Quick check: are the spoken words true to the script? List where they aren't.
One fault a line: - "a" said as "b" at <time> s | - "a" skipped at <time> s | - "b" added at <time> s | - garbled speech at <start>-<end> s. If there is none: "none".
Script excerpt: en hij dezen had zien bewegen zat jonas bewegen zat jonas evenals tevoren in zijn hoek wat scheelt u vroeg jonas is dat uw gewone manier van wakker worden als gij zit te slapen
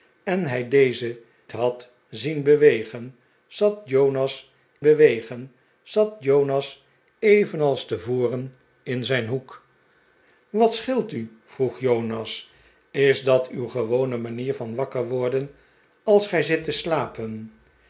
none